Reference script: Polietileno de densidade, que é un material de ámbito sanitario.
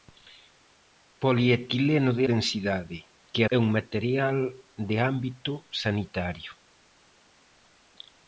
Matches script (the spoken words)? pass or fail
pass